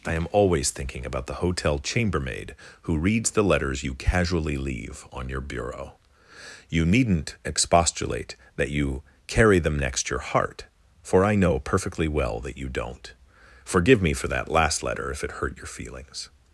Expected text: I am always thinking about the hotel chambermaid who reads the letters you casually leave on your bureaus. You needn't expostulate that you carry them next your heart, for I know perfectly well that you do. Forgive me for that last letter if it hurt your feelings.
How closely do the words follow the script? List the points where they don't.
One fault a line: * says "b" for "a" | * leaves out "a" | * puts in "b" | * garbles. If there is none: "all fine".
* says "bureau" for "bureaus"
* says "don't" for "do"